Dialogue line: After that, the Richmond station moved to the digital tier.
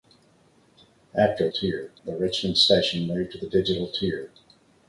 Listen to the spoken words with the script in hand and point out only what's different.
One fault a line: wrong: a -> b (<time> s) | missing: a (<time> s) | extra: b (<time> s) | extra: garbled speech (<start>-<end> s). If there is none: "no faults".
wrong: that -> tier (1.5 s)